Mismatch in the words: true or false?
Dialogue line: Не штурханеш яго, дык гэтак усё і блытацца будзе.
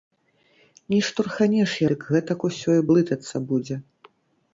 true